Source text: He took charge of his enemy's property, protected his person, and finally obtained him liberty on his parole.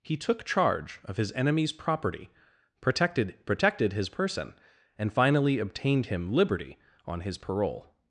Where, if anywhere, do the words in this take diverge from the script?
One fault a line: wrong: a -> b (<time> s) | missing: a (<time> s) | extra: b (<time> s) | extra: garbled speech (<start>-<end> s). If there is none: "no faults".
extra: protected (3.5 s)